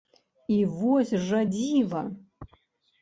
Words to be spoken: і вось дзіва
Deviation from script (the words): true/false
true